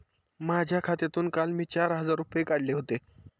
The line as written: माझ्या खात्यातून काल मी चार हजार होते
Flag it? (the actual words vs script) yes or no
yes